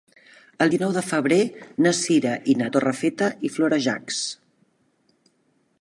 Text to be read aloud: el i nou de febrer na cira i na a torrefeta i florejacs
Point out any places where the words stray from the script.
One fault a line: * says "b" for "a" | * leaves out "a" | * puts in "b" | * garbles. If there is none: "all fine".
all fine